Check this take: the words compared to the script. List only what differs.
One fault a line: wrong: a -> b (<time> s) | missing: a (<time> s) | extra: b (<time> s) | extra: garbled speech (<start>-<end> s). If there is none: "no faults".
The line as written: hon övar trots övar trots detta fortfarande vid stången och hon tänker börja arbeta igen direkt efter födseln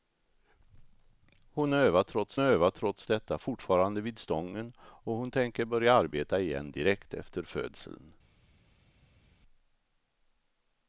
no faults